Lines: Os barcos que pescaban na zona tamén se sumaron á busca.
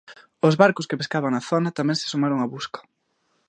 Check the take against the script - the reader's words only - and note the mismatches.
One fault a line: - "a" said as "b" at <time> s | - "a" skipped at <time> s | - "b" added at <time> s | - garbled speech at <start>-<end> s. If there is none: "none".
none